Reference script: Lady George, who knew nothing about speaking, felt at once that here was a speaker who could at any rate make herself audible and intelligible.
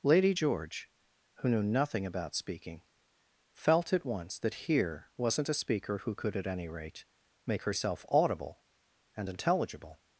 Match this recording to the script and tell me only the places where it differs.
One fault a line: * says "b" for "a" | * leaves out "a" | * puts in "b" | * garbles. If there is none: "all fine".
* says "wasn't" for "was"